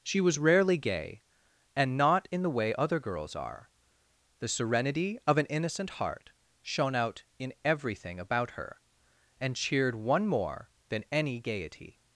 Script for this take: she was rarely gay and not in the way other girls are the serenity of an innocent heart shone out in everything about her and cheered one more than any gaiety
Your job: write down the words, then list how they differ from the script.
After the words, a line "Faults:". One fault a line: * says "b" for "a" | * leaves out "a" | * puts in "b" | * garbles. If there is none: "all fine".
she was rarely gay and not in the way other girls are the serenity of an innocent heart shone out in everything about her and cheered one more than any gaiety
Faults:
all fine